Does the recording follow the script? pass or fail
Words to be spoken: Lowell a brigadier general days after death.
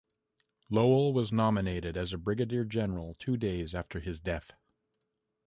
fail